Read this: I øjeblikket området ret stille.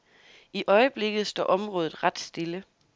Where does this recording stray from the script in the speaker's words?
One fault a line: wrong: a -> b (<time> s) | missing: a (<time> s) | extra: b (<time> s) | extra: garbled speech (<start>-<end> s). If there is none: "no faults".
extra: står (1.3 s)